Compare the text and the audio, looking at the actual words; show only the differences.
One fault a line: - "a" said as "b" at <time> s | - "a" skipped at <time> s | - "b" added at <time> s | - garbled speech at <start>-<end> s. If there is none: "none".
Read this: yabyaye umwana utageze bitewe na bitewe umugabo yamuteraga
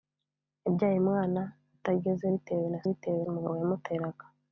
none